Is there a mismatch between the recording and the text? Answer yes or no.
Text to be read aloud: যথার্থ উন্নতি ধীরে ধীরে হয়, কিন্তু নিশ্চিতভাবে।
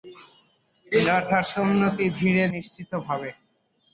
yes